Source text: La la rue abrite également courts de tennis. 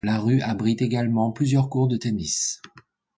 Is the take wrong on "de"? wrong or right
right